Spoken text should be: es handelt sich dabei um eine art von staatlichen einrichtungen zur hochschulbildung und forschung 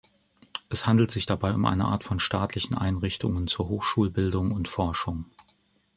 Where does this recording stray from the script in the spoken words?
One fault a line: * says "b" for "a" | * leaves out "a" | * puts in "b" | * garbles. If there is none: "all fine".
all fine